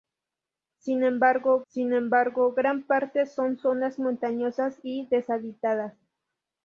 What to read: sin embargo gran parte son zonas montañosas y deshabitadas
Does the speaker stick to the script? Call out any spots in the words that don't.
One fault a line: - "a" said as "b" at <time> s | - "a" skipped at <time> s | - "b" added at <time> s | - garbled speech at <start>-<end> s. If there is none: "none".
- "sin embargo" added at 1.7 s